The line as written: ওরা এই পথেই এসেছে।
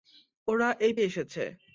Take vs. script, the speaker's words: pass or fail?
fail